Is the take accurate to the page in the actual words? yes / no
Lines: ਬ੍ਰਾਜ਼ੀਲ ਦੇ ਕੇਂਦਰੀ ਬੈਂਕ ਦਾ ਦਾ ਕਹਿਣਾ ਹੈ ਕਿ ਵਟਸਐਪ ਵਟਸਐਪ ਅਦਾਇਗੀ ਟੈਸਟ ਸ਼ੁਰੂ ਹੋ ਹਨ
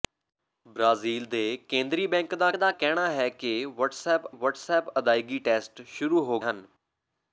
yes